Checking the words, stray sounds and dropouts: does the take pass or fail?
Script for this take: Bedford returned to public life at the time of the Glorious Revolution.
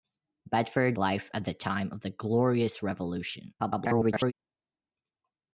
fail